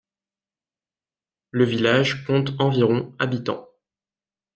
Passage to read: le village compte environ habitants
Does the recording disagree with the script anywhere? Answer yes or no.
no